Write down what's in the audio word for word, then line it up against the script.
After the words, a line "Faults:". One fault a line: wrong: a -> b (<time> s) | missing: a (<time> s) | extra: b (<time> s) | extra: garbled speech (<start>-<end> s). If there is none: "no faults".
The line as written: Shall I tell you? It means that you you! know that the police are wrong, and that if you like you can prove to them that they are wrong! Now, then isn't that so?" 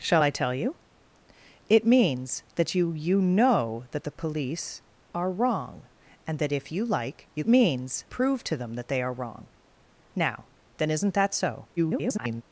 Shall I tell you? It means that you you! know that the police are wrong, and that if you like you means prove to them that they are wrong! Now, then isn't that so?" [garbled]
Faults:
wrong: can -> means (7.5 s)
extra: garbled speech (11.8-12.4 s)